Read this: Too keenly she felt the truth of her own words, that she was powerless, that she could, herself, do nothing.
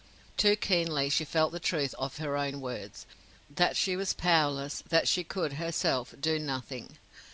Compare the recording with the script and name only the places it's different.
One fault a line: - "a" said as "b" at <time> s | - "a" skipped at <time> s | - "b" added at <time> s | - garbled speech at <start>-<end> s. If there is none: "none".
none